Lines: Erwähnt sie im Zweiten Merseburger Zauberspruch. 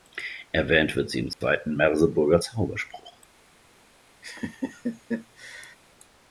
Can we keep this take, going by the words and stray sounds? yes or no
no